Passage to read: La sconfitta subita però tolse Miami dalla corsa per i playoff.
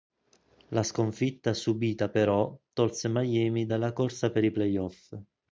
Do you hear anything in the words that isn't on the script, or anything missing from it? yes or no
no